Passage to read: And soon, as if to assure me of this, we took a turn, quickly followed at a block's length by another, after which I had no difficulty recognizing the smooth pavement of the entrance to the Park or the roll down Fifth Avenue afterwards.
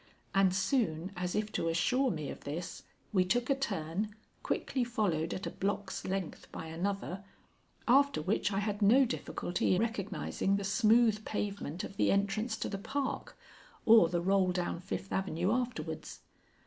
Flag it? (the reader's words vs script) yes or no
no